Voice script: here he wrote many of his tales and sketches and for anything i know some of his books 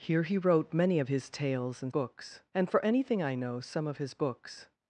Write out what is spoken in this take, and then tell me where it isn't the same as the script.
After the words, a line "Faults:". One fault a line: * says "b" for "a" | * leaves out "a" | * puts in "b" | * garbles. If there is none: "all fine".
here he wrote many of his tales and books and for anything i know some of his books
Faults:
* says "books" for "sketches"